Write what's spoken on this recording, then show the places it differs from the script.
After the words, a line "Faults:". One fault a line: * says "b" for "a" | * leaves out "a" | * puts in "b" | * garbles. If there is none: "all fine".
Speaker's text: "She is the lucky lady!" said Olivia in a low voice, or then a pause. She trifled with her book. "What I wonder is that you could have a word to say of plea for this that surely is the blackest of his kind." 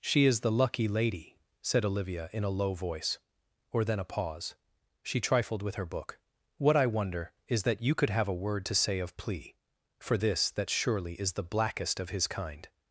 "She is the lucky lady!" said Olivia in a low voice, or then a pause. She trifled with her book. "What I wonder is that you could have a word to say of plea for this that surely is the blackest of his kind."
Faults:
all fine